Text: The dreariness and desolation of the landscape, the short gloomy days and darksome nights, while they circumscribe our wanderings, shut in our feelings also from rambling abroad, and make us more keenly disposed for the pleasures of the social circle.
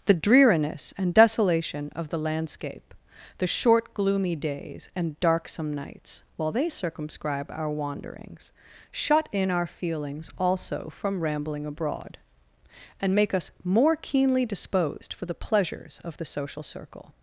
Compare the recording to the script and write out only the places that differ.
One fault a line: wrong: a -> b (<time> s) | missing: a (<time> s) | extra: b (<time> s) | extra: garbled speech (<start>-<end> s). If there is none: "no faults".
no faults